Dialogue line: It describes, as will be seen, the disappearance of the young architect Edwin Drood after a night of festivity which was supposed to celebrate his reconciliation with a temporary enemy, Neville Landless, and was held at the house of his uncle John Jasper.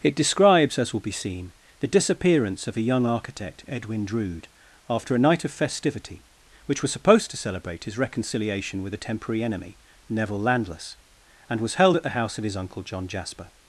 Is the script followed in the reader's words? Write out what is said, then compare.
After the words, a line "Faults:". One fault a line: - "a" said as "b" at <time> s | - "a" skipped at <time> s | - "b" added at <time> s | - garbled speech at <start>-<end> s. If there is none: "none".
It describes, as will be seen, the disappearance of a young architect Edwin Drood after a night of festivity which was supposed to celebrate his reconciliation with a temporary enemy, Neville Landless, and was held at the house of his uncle John Jasper.
Faults:
- "the" said as "a" at 2.8 s